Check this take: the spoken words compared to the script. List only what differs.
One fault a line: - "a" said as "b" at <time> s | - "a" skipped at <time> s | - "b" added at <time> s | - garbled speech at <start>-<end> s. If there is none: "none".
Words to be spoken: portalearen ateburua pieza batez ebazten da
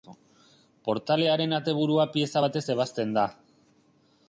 none